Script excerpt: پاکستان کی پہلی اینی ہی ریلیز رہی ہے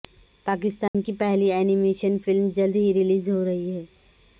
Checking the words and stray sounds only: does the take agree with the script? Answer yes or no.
no